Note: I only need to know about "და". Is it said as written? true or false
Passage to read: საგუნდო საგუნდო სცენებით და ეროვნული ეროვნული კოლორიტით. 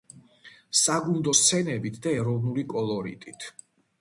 true